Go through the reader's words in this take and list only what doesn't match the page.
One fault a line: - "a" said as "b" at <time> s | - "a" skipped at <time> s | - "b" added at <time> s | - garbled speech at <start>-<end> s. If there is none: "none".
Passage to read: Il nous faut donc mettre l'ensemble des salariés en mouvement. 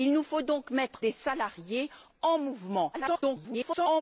- "l'ensemble" skipped at 1.0 s
- garbled speech at 2.9-4.0 s